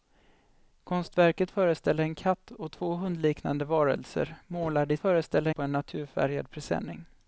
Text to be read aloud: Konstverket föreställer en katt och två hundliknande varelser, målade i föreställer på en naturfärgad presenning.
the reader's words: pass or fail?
pass